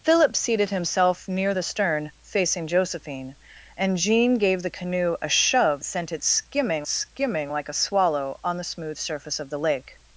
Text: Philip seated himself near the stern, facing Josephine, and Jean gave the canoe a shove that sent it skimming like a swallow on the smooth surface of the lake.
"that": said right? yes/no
no